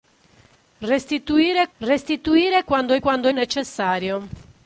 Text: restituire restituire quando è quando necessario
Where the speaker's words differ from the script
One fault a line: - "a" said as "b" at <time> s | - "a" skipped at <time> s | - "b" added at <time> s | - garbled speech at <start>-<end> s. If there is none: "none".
none